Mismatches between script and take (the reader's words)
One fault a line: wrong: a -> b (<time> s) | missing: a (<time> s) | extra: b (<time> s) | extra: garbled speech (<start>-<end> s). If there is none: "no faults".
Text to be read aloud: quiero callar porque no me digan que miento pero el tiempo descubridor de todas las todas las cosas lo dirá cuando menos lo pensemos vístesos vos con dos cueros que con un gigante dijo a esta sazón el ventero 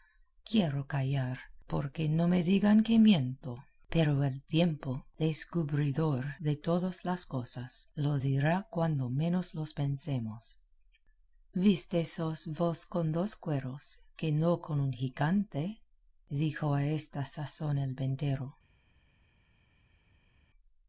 missing: todas las (7.3 s)
extra: no (14.3 s)